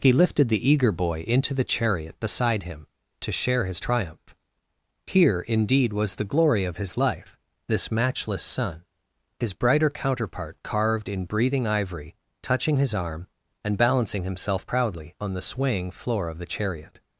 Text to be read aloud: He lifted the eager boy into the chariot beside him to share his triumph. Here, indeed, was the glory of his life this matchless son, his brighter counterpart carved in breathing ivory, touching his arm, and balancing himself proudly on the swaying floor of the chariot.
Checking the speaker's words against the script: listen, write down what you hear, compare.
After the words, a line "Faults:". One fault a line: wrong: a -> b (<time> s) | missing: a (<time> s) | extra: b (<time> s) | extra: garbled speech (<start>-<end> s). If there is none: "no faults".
He lifted the eager boy into the chariot beside him to share his triumph. Here, indeed, was the glory of his life this matchless son, his brighter counterpart carved in breathing ivory, touching his arm, and balancing himself proudly on the swaying floor of the chariot.
Faults:
no faults